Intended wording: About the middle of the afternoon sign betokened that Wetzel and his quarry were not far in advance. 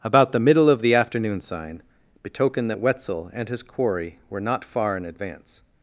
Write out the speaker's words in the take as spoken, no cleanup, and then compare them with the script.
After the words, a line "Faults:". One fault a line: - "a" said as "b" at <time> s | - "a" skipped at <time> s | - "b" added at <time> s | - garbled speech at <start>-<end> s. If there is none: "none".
About the middle of the afternoon sign betokened that Wetzel and his quarry were not far in advance.
Faults:
none